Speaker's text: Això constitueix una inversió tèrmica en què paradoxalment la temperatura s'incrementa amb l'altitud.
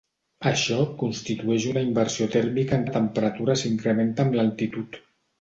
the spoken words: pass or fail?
fail